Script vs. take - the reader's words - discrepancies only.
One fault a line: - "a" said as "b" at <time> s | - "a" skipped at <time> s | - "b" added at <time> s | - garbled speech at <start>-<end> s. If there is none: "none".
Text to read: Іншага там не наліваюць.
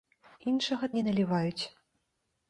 - "там" skipped at 0.9 s